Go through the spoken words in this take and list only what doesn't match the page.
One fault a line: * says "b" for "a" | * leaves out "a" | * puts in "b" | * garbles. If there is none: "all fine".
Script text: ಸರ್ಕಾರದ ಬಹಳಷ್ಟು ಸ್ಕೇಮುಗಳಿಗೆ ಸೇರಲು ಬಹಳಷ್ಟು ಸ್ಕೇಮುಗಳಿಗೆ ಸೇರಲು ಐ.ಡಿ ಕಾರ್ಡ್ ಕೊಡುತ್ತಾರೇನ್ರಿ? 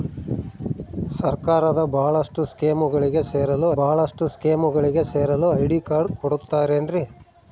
all fine